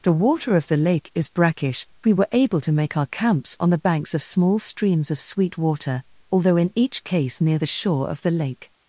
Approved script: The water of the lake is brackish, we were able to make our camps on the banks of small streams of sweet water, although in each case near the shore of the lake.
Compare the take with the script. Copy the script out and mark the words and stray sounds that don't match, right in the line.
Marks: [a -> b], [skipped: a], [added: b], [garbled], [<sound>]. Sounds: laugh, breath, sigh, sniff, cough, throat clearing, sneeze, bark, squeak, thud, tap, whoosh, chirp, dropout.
The water of the lake is brackish, we were able to make our camps on the banks of small streams of sweet water, although in each case near the shore of the lake.